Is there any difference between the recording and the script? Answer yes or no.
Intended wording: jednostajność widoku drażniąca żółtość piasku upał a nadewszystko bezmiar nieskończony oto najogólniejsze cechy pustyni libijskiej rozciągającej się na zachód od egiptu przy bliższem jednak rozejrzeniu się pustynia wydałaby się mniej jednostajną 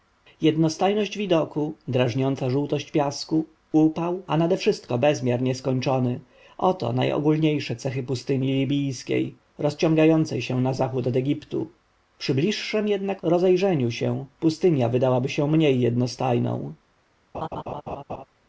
no